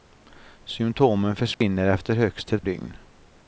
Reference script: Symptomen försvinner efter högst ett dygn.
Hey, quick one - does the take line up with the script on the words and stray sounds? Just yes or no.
no